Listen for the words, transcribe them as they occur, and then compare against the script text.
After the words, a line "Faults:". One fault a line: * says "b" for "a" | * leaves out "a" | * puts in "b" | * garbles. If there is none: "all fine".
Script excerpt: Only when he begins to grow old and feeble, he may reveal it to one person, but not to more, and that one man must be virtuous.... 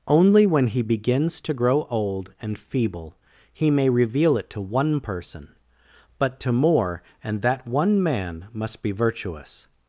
Only when he begins to grow old and feeble, he may reveal it to one person, but to more, and that one man must be virtuous....
Faults:
* leaves out "not"